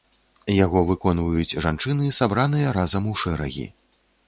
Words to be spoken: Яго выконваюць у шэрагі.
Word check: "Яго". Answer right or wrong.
right